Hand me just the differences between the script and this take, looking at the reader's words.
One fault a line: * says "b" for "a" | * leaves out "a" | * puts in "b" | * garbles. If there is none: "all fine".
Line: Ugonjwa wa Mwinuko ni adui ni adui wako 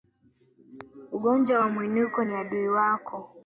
* leaves out "ni adui"